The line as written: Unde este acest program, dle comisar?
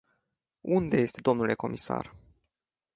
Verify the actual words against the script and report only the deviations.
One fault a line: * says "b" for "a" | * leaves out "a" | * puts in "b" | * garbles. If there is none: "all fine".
* leaves out "acest program"